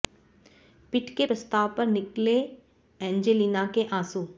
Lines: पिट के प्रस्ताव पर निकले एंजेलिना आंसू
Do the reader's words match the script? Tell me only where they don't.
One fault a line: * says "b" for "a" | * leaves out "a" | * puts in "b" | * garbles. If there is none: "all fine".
* puts in "के"